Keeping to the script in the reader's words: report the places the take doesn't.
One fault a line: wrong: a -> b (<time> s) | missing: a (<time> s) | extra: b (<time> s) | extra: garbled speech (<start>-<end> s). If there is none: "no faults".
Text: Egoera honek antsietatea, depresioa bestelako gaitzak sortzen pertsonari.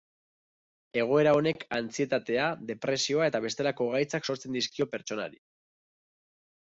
extra: eta (3.3 s)
extra: dizkio (4.6 s)